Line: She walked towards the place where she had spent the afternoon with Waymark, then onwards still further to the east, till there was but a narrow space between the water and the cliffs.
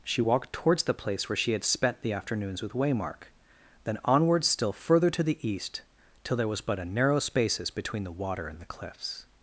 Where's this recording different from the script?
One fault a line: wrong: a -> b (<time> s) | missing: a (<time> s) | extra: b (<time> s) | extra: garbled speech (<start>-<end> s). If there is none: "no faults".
wrong: afternoon -> afternoons (2.1 s)
wrong: space -> spaces (7.2 s)